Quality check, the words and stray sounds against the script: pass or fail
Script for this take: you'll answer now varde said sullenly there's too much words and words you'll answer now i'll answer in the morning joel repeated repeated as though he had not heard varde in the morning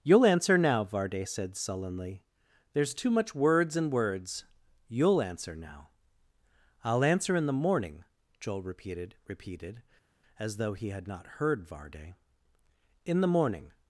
pass